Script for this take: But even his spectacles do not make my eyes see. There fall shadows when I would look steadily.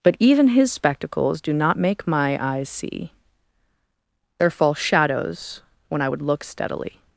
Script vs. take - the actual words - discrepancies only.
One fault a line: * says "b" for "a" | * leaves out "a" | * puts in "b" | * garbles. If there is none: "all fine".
all fine